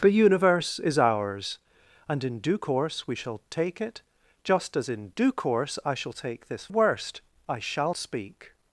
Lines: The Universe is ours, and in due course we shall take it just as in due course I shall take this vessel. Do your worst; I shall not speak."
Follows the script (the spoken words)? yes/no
no